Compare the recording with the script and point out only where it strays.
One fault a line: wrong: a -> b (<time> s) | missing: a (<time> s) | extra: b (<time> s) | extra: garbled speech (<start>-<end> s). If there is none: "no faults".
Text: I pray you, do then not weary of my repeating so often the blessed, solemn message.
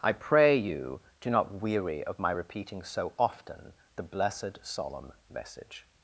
missing: then (1.3 s)